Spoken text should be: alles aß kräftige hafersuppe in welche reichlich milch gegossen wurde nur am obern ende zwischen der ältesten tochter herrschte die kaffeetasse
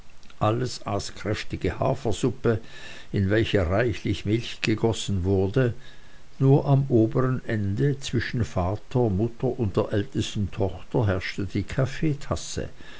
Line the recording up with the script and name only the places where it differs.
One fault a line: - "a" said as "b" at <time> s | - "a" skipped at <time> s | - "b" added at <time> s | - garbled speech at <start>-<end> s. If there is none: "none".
- "vater mutter und" added at 8.4 s